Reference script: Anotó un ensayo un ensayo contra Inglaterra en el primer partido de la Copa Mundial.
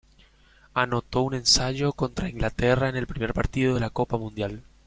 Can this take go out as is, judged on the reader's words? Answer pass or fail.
fail